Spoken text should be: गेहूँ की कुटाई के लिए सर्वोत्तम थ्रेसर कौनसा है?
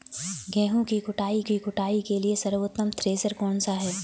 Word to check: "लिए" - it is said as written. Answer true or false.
true